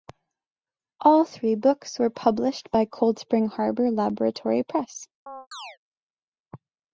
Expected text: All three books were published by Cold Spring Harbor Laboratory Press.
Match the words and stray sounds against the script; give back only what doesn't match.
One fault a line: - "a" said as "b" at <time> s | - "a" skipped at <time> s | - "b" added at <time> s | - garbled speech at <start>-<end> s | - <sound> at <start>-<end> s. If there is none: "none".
- chirp at 5.3-5.8 s